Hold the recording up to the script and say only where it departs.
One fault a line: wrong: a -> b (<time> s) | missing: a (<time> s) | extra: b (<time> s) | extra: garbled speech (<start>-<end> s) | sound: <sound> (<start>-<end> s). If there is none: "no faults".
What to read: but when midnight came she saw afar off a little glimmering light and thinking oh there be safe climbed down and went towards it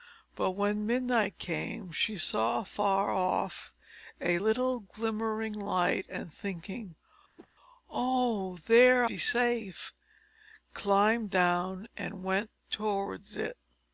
sound: whoosh (7.4-7.5 s)